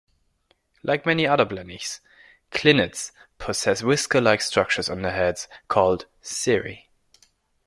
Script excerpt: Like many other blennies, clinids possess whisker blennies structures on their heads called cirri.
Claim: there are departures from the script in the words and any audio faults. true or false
true